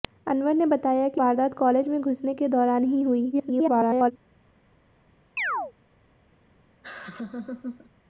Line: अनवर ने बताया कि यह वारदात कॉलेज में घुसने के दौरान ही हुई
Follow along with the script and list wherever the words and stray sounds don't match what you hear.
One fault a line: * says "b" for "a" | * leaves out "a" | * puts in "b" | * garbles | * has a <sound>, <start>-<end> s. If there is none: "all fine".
* leaves out "यह"
* garbles
* has a chirp, 5.4-5.7 s
* has a laugh, 6.8-7.9 s